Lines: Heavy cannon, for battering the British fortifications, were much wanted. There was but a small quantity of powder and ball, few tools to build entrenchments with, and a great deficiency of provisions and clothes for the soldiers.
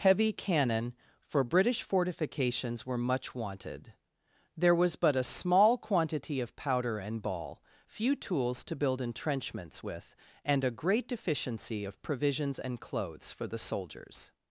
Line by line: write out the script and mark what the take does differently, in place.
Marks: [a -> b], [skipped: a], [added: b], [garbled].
Heavy cannon, for [skipped: battering the] British fortifications, were much wanted. There was but a small quantity of powder and ball, few tools to build entrenchments with, and a great deficiency of provisions and clothes for the soldiers.